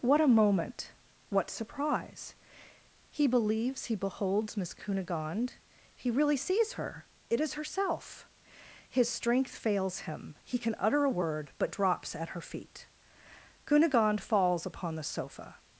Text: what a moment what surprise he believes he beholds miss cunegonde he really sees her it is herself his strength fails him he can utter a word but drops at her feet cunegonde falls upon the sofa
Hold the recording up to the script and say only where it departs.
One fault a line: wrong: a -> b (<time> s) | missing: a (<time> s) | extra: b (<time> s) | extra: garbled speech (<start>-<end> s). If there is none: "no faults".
no faults